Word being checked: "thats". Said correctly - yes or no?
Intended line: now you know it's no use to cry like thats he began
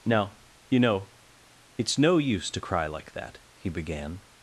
no